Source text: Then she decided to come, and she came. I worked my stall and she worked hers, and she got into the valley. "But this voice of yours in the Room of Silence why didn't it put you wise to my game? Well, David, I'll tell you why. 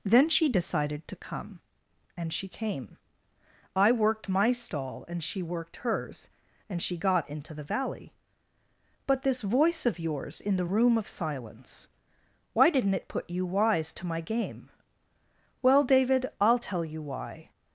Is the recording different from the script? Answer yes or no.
no